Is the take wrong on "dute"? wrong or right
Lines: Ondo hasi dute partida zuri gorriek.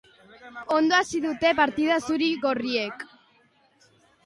right